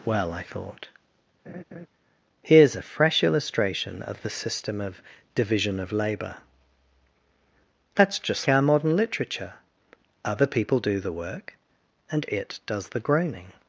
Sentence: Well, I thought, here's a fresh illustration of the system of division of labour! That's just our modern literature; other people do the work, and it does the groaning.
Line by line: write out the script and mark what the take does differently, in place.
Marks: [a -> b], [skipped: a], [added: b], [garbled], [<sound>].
Well, I thought, [laugh] here's a fresh illustration of the system of division of labour! That's just our modern literature; other people do the work, and it does the groaning.